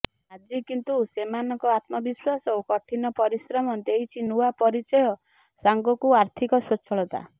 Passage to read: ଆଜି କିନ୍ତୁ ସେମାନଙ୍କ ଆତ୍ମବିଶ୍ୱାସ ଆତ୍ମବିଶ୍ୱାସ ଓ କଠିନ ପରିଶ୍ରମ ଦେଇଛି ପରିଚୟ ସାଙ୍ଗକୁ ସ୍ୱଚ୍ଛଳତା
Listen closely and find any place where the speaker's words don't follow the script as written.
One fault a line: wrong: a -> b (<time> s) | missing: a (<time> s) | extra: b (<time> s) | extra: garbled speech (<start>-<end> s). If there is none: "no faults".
missing: ଆତ୍ମବିଶ୍ୱାସ (2.5 s)
extra: ନୂଆ (4.3 s)
extra: ଆର୍ଥିକ (6.2 s)